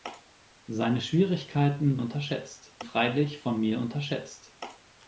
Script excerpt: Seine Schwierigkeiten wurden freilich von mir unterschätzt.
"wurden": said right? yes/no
no